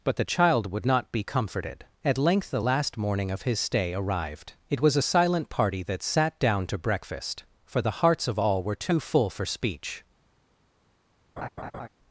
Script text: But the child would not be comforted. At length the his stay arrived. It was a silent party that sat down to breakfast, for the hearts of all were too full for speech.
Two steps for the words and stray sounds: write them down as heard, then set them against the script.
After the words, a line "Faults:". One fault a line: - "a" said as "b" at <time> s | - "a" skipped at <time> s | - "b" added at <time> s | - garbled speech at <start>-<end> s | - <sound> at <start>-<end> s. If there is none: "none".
But the child would not be comforted. At length the last morning of his stay arrived. It was a silent party that sat down to breakfast, for the hearts of all were too full for speech.
Faults:
- "last morning of" added at 2.6 s
- laugh at 11.4-11.9 s